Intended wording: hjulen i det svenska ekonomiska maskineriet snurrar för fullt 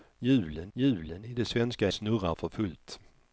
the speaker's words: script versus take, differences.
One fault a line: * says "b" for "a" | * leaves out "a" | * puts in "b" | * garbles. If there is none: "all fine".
* puts in "hjulen"
* leaves out "ekonomiska maskineriet"